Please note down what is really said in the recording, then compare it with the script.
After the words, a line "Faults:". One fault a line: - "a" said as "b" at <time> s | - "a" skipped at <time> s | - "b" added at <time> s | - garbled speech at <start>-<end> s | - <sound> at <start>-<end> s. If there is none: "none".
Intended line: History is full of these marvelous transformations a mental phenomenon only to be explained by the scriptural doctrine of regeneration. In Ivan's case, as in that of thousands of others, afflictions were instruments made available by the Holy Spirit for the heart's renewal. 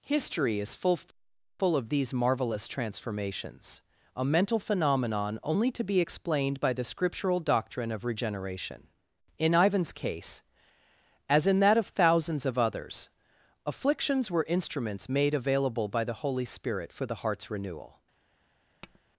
History is full full of these marvelous transformations a mental phenomenon only to be explained by the scriptural doctrine of regeneration. In Ivan's case, as in that of thousands of others, afflictions were instruments made available by the Holy Spirit for the heart's renewal.
Faults:
- "full" added at 1.6 s
- tap at 18.8-19.0 s